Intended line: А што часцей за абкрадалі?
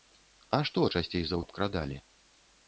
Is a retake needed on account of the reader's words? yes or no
no